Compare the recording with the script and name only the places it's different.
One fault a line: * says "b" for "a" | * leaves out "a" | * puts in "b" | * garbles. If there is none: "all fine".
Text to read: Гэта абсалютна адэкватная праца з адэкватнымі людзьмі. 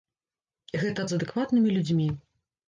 * leaves out "абсалютна адэкватная праца"